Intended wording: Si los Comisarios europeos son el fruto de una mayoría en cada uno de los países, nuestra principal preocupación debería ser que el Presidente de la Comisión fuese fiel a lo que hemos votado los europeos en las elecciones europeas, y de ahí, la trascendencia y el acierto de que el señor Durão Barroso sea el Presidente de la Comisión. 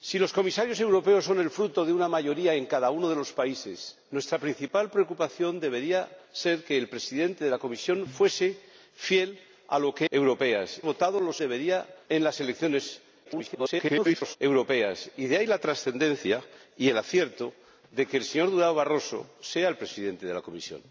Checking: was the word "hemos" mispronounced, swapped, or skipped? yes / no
yes